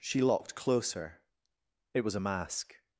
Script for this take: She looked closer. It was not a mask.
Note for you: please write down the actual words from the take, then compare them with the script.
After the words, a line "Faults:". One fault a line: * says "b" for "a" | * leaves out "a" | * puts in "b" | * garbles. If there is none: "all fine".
She locked closer. It was a mask.
Faults:
* says "locked" for "looked"
* leaves out "not"